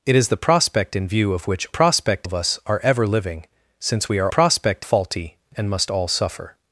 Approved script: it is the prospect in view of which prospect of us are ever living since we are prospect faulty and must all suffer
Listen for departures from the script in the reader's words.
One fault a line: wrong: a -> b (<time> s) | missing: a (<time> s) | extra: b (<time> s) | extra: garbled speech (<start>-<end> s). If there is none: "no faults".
no faults